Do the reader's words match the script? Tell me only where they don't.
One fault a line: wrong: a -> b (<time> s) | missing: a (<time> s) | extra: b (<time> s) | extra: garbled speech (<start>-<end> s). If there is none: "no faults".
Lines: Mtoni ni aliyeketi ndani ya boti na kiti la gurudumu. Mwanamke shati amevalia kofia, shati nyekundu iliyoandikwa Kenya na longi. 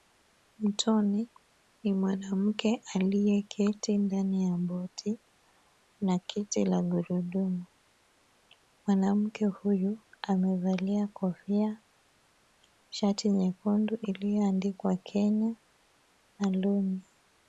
extra: mwanamke (1.9 s)
wrong: shati -> huyu (9.4 s)